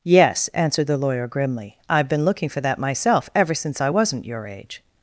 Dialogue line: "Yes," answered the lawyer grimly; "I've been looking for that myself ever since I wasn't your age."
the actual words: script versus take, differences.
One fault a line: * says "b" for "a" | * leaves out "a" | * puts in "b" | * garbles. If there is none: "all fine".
all fine